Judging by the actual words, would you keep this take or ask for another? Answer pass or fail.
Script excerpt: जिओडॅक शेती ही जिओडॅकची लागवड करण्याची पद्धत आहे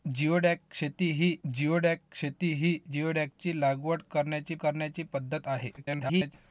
fail